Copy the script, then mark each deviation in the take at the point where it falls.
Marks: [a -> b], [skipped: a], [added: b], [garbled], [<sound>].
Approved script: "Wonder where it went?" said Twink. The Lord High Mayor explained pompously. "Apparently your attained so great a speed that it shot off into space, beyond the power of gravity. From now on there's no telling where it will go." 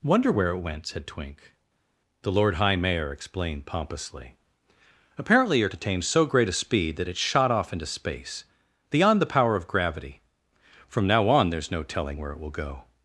"Wonder where it went?" said Twink. The Lord High Mayor explained pompously. "Apparently your attained so great a speed that it shot off into space, beyond the power of gravity. From now on there's no telling where it will go."